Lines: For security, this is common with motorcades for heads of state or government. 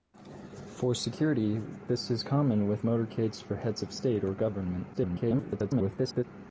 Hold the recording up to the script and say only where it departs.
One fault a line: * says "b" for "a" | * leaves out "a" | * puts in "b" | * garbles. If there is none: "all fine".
* garbles